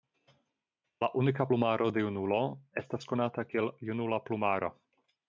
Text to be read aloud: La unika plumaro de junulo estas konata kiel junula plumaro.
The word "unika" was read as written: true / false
true